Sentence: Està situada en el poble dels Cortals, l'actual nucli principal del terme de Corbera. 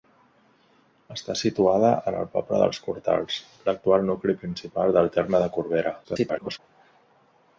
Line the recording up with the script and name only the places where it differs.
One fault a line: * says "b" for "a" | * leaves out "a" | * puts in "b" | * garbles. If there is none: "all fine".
* garbles